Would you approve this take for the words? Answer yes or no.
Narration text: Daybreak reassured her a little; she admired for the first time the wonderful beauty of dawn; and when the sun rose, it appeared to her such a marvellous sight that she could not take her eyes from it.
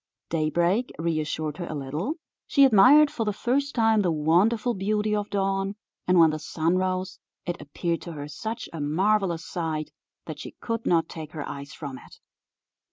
yes